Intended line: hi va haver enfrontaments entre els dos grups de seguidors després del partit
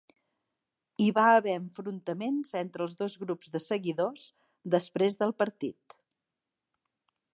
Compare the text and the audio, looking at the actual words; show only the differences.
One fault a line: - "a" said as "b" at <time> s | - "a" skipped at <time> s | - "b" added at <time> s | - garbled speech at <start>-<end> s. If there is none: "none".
none